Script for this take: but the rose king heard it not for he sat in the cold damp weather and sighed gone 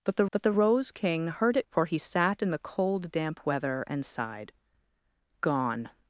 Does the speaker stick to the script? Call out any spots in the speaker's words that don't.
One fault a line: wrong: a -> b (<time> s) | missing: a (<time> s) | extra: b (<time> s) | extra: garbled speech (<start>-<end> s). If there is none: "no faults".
extra: but the (0.3 s)
missing: not (1.7 s)